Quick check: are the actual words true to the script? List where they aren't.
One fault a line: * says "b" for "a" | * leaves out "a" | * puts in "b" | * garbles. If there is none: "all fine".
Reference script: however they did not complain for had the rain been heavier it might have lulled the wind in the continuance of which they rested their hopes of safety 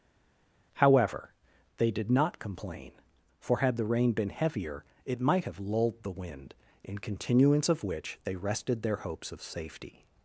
* leaves out "the"